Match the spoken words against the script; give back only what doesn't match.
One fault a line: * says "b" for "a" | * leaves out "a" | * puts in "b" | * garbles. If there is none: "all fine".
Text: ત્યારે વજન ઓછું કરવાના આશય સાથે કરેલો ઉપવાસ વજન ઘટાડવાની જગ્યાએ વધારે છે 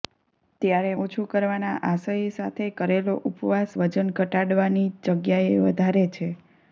* leaves out "વજન"